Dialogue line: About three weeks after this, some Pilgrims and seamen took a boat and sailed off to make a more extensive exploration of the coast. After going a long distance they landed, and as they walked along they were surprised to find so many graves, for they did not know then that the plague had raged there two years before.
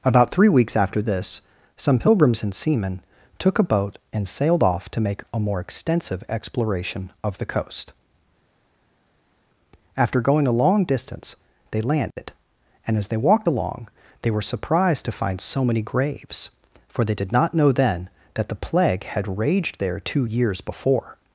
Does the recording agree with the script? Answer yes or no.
yes